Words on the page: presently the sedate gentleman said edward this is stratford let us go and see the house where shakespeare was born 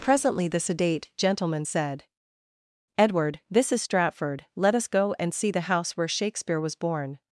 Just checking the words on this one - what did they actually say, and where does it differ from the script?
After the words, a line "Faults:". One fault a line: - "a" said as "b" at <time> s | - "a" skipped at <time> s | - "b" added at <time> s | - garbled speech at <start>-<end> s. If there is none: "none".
presently the sedate gentleman said edward this is stratford let us go and see the house where shakespeare was born
Faults:
none